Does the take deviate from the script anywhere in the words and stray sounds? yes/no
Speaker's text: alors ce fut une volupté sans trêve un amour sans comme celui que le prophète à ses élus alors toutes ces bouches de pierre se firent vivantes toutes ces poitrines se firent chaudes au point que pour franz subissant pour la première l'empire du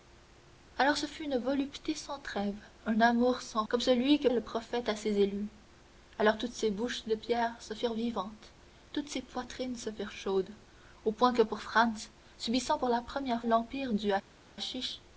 no